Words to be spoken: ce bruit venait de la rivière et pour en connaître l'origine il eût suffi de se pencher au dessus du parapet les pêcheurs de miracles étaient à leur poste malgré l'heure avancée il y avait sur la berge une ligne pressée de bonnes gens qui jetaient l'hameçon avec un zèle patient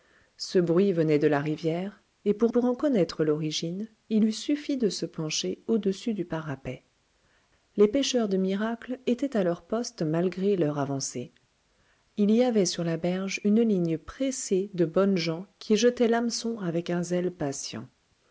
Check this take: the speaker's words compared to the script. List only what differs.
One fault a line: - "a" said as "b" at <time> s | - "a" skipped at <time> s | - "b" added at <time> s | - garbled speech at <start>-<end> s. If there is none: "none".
- "pour" added at 2.5 s